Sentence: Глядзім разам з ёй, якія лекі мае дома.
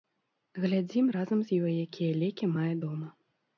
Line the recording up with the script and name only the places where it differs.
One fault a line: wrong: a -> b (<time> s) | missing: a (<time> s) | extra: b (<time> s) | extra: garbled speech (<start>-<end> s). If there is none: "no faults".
no faults